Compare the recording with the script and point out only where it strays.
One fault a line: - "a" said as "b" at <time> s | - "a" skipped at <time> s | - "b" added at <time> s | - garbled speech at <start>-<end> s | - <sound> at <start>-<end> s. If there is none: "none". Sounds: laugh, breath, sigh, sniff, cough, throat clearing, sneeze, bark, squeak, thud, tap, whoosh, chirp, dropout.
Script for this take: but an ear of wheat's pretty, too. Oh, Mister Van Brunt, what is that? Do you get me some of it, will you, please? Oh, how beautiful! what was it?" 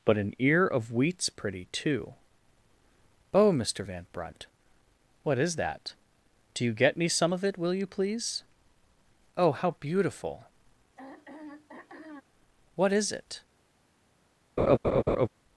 - throat clearing at 11.0-12.2 s
- "was" said as "is" at 12.9 s
- laugh at 14.6-15.3 s